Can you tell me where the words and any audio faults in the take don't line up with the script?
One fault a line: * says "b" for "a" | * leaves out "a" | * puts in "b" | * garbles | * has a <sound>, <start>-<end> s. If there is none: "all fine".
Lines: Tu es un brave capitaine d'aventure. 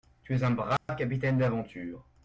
* has a dropout, 0.8-0.9 s